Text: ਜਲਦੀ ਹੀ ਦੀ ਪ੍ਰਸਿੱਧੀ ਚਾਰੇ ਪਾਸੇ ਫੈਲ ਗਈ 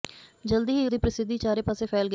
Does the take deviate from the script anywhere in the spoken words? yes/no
no